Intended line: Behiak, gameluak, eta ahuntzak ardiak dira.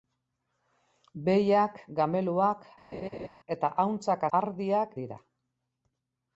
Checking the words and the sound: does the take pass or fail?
fail